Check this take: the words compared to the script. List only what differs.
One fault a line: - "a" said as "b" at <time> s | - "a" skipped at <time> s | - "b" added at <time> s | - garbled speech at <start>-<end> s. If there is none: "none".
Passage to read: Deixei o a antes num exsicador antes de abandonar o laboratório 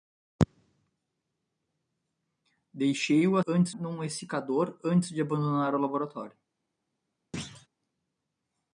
none